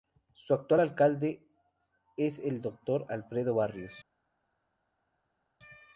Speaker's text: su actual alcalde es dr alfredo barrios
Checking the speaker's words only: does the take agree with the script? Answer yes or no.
no